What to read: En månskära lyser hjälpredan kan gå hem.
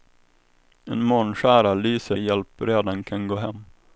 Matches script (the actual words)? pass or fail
pass